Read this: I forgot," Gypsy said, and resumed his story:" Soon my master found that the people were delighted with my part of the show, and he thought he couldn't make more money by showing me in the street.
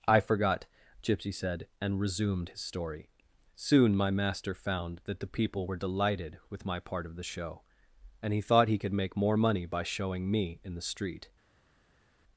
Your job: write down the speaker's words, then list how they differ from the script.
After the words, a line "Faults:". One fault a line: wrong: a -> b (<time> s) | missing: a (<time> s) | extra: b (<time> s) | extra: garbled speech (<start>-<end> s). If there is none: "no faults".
I forgot," Gypsy said, and resumed his story:" Soon my master found that the people were delighted with my part of the show, and he thought he could make more money by showing me in the street.
Faults:
wrong: couldn't -> could (8.8 s)